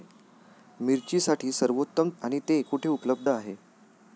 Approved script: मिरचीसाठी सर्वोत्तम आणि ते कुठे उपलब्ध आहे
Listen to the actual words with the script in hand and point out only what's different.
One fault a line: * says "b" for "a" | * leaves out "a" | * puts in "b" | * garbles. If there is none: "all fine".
all fine